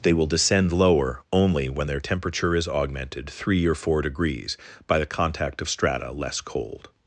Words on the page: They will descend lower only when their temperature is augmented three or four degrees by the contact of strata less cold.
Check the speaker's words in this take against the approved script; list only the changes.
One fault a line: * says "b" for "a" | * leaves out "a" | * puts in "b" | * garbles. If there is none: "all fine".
all fine